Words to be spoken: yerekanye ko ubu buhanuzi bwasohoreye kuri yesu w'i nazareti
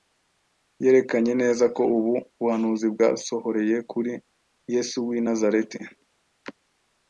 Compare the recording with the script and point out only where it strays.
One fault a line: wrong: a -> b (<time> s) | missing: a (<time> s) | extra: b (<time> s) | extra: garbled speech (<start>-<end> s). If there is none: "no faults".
extra: neza (1.4 s)